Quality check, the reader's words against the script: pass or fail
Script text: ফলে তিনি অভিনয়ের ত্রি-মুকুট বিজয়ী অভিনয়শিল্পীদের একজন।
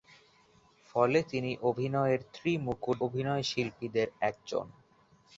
fail